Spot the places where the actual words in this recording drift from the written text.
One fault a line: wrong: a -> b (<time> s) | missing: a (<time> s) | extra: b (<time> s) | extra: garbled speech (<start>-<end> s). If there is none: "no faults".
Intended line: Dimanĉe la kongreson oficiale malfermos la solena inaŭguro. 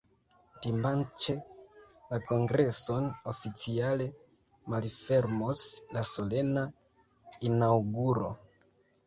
no faults